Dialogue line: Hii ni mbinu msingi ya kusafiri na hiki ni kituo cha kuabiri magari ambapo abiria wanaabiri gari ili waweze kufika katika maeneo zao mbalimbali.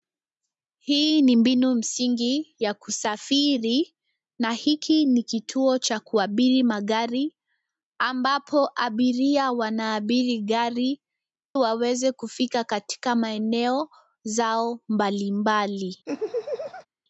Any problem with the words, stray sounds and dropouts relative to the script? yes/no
yes